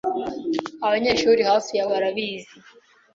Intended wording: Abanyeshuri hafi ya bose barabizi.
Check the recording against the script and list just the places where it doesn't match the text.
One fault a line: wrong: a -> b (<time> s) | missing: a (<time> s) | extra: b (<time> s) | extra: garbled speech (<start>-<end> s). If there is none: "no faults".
missing: bose (1.9 s)